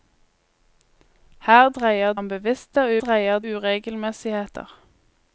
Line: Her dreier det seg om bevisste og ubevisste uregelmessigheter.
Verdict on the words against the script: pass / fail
fail